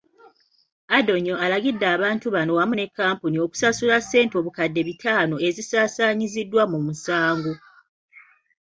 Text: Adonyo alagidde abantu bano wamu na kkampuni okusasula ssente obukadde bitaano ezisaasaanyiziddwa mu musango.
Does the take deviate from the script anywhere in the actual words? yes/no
yes